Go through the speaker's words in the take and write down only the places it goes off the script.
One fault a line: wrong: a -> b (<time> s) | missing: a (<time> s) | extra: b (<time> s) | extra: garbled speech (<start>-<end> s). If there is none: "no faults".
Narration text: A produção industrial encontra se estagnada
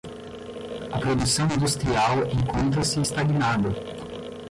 no faults